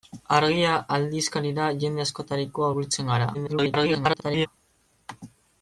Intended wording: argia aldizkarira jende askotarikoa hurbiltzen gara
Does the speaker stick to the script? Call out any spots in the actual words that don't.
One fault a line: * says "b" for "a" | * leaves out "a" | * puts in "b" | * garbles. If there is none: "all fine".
* garbles